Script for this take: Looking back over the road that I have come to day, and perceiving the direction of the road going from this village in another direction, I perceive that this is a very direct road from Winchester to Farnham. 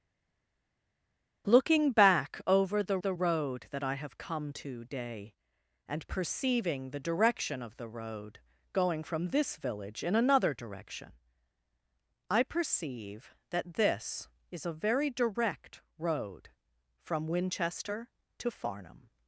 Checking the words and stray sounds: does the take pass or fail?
fail